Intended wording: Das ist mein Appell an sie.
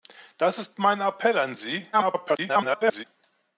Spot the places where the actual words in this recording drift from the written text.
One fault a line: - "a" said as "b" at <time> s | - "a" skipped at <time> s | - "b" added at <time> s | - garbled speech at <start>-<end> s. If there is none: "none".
- garbled speech at 1.9-3.0 s